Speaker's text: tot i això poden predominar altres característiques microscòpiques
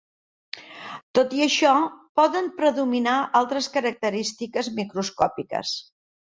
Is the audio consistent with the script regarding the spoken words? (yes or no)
yes